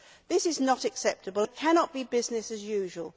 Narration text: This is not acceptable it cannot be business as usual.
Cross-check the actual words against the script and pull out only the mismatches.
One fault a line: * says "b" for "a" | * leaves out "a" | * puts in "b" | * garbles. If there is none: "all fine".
all fine